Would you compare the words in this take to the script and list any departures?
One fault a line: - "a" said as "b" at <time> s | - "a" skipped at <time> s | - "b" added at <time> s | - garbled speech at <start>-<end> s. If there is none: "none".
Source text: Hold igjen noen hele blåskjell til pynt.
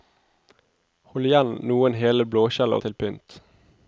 none